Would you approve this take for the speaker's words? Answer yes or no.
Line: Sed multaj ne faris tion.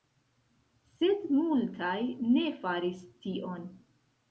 yes